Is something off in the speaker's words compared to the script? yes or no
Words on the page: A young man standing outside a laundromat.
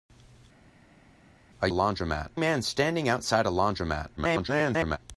yes